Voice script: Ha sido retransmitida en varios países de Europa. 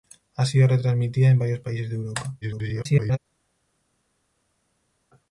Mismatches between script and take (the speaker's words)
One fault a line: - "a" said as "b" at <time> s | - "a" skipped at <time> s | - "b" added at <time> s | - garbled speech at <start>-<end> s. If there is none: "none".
- garbled speech at 2.4-3.2 s